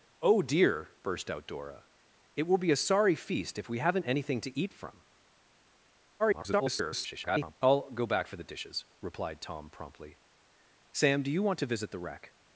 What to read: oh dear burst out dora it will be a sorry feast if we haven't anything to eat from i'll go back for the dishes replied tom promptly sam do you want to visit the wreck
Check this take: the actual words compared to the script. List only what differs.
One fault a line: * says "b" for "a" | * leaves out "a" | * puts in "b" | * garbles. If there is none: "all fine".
* garbles